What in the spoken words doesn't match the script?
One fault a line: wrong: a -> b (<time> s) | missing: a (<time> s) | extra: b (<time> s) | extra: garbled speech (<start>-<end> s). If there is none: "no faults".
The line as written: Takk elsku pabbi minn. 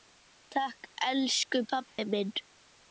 no faults